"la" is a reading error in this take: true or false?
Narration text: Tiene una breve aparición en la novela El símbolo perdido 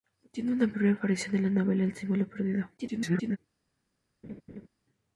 false